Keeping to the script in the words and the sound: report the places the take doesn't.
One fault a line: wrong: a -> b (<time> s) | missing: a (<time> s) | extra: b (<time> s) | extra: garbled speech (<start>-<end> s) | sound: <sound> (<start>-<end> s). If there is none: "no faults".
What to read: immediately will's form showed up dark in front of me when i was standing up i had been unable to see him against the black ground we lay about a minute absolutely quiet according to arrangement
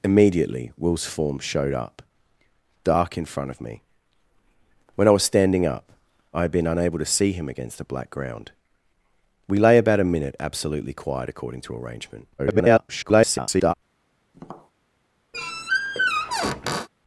extra: garbled speech (12.4-13.7 s)
sound: tap (14.3-14.7 s)
sound: squeak (15.3-16.9 s)